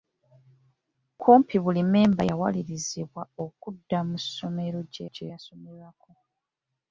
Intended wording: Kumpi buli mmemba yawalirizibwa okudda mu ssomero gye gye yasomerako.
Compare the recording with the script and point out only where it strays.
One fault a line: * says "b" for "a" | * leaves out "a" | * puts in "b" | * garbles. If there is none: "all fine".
all fine